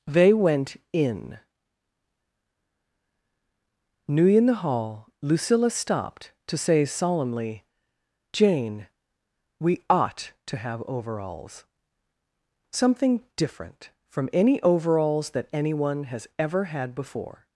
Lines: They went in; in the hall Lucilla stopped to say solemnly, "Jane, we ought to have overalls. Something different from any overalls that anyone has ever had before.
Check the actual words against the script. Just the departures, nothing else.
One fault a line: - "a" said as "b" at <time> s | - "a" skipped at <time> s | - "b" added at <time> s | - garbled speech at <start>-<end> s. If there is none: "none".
- "new" added at 4.1 s